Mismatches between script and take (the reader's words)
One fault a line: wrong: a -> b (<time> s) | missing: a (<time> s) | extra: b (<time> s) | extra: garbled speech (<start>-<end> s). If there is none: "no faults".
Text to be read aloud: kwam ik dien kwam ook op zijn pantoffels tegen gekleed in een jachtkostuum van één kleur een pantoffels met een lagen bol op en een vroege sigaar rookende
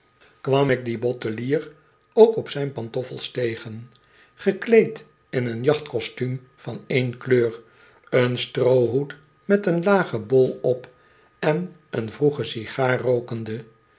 wrong: kwam -> bottelier (1.0 s)
wrong: pantoffels -> stroohoed (8.4 s)